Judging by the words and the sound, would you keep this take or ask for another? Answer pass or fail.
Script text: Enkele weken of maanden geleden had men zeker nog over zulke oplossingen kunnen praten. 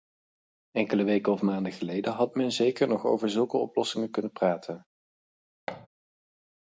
fail